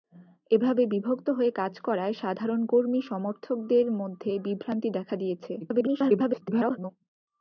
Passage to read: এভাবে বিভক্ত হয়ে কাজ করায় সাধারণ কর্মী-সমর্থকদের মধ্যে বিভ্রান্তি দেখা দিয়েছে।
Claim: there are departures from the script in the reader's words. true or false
true